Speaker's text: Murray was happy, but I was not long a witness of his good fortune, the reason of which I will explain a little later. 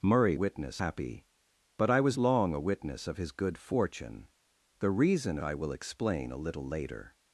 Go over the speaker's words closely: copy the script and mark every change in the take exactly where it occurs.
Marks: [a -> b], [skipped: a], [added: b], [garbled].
Murray [was -> witness] happy, but I was [skipped: not] long a witness of his good fortune, the reason [skipped: of which] I will explain a little later.